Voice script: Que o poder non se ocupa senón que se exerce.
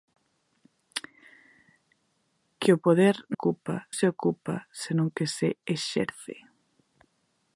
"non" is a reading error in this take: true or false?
true